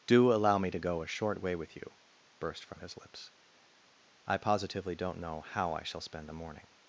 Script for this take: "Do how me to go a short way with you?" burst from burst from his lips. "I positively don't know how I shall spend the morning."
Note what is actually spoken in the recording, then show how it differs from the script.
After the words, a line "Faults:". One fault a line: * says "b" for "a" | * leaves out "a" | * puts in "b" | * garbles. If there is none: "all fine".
"Do allow me to go a short way with you?" burst from his lips. "I positively don't know how I shall spend the morning."
Faults:
* says "allow" for "how"
* leaves out "burst from"